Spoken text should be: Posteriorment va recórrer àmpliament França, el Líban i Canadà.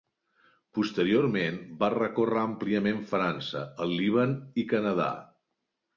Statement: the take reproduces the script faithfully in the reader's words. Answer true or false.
true